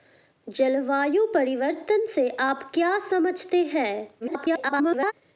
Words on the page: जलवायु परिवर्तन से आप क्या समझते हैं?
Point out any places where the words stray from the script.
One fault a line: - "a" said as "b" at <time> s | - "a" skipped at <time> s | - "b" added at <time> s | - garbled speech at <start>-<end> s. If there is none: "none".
- garbled speech at 4.2-5.1 s